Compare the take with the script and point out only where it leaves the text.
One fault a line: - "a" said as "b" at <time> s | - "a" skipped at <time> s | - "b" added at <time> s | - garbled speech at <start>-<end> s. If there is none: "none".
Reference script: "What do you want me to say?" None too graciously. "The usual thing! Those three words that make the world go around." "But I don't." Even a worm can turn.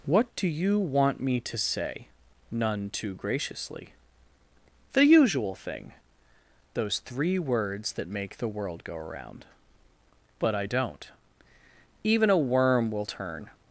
- "can" said as "will" at 12.9 s